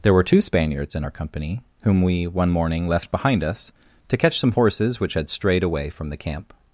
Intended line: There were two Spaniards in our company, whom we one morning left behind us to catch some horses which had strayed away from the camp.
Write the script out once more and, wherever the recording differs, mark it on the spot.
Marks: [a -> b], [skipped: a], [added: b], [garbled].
There were two Spaniards in our company, whom we one morning left behind us to catch some horses which had strayed away from the camp.